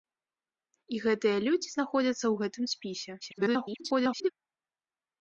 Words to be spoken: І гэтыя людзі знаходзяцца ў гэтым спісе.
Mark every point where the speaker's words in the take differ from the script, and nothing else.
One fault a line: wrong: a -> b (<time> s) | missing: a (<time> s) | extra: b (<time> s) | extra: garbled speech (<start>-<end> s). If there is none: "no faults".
extra: garbled speech (3.2-4.3 s)